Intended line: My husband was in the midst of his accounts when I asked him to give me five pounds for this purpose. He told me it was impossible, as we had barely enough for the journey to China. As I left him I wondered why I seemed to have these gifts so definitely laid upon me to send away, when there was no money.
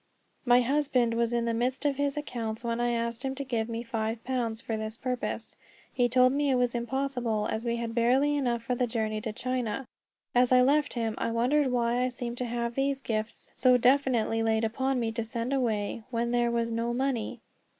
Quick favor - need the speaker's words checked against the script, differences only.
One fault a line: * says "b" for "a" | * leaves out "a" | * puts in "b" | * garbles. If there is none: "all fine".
all fine